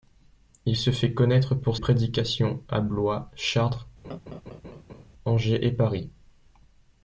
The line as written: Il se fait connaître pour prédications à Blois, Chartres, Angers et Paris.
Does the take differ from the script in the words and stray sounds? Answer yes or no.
yes